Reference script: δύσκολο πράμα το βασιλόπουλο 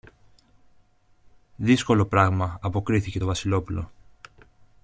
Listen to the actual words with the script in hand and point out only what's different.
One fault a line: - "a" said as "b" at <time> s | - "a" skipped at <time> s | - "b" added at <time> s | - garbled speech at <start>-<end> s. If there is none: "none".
- "αποκρίθηκε" added at 2.6 s